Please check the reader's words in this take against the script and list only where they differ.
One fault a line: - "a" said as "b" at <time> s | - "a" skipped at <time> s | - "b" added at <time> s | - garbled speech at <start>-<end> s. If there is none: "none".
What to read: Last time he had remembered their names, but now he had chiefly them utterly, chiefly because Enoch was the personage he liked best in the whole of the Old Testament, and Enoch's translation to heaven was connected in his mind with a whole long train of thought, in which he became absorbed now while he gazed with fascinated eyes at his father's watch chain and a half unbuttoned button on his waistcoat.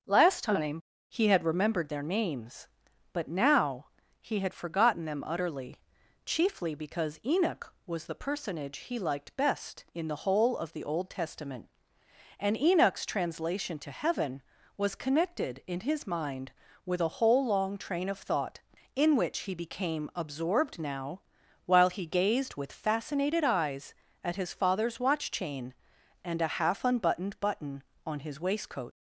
- "chiefly" said as "forgotten" at 4.5 s